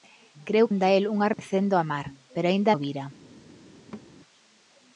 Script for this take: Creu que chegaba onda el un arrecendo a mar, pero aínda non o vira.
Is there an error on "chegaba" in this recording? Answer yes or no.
yes